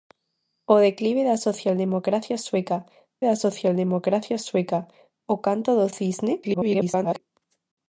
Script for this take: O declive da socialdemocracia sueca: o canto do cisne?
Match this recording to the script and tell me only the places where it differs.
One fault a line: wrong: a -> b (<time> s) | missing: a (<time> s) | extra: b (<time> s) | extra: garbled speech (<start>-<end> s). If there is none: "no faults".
extra: da socialdemocracia sueca (3.3 s)
extra: garbled speech (6.4-7.2 s)